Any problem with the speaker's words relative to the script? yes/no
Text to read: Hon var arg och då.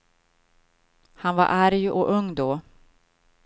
yes